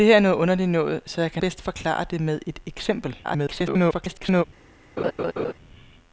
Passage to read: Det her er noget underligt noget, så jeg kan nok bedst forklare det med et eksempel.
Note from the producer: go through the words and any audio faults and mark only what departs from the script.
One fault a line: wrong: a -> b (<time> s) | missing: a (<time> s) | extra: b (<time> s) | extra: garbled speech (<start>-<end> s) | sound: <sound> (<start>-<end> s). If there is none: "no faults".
missing: nok (1.4 s)
extra: garbled speech (3.2-4.4 s)
sound: laugh (5.0-5.5 s)